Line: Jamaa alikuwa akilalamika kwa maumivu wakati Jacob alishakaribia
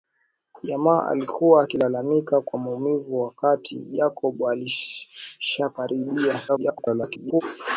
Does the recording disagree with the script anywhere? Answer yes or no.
yes